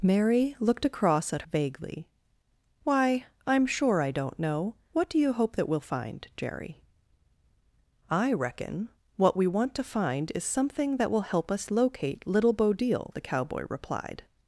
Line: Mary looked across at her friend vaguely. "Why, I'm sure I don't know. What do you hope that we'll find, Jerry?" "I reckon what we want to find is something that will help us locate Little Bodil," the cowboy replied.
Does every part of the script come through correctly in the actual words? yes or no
no